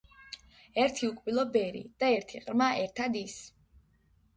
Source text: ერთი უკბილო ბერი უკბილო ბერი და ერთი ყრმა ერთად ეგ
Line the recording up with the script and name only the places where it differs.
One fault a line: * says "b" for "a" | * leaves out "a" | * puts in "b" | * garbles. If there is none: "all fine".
* leaves out "უკბილო ბერი"
* says "ის" for "ეგ"